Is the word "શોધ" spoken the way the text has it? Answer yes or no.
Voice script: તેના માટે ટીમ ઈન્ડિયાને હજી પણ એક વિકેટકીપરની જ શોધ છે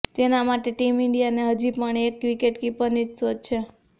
yes